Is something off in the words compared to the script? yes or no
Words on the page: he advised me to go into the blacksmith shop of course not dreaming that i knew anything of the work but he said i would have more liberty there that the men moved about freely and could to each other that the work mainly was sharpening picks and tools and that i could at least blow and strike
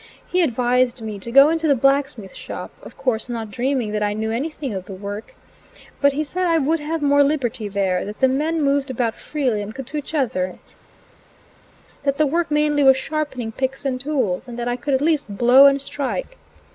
no